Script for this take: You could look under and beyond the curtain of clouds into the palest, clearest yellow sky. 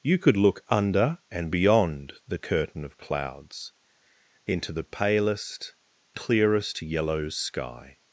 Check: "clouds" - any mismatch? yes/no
no